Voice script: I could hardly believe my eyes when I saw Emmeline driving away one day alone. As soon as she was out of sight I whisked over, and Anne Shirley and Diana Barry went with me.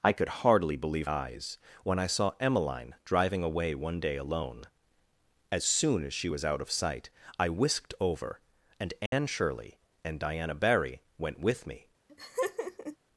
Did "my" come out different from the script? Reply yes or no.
yes